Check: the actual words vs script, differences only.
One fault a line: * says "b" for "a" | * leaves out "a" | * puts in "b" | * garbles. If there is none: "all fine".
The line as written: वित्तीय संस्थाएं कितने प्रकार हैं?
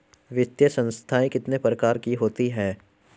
* puts in "की होती"